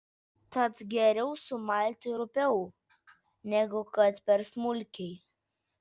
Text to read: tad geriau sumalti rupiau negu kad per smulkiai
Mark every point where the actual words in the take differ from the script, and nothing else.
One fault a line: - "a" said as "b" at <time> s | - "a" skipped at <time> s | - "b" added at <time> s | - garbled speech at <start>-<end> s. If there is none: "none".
none